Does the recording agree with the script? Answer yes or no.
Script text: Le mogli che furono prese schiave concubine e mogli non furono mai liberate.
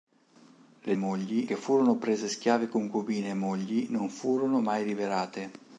yes